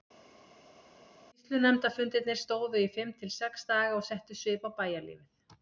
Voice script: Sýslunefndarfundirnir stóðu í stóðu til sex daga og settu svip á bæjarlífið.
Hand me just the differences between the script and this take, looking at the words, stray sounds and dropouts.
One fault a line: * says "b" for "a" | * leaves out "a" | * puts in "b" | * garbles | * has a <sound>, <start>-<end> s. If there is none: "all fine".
* says "fimm" for "stóðu"